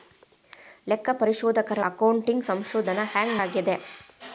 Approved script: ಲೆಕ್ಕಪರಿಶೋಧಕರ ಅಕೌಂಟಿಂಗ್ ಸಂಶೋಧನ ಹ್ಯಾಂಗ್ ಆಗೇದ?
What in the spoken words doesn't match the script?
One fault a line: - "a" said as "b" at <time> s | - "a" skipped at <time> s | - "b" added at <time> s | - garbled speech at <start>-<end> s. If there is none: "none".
none